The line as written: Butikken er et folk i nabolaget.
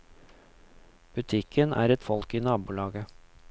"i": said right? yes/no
yes